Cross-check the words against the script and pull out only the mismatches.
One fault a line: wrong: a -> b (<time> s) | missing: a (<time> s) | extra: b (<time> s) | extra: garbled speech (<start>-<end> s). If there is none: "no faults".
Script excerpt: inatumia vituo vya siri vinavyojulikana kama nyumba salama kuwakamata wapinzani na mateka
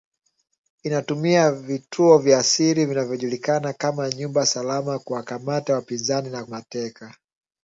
no faults